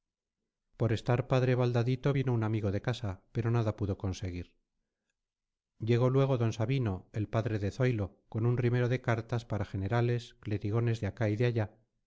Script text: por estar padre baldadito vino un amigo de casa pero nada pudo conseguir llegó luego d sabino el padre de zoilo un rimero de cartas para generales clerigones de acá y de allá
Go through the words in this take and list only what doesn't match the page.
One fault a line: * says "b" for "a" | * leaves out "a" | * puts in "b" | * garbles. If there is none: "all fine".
* puts in "con"